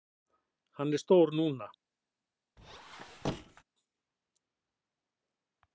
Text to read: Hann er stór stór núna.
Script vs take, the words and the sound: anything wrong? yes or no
yes